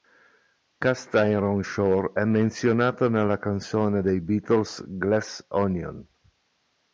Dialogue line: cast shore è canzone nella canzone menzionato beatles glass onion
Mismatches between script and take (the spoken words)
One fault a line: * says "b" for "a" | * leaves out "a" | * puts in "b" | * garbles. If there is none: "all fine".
* puts in "iron"
* says "menzionato" for "canzone"
* says "dei" for "menzionato"